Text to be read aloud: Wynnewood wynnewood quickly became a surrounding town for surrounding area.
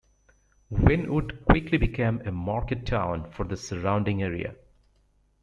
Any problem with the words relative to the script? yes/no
yes